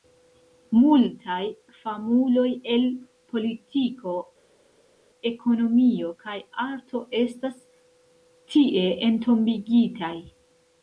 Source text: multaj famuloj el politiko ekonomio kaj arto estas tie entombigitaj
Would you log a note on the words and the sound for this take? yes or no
no